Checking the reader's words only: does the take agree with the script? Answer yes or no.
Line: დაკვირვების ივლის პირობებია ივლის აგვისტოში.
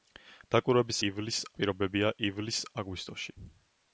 yes